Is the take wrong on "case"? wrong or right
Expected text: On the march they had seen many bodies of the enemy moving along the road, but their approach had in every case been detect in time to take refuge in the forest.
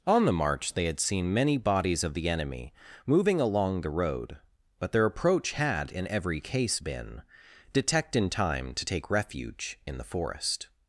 right